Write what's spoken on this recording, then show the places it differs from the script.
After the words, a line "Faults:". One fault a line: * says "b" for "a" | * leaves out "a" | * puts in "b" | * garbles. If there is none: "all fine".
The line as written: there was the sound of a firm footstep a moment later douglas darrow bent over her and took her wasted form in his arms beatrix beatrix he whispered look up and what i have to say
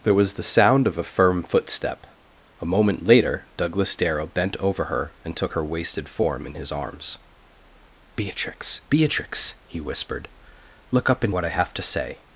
there was the sound of a firm footstep a moment later douglas darrow bent over her and took her wasted form in his arms beatrix beatrix he whispered look up and what i have to say
Faults:
all fine